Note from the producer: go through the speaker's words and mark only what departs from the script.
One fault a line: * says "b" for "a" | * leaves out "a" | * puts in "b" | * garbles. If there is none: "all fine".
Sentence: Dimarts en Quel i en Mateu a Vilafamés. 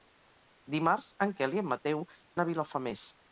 all fine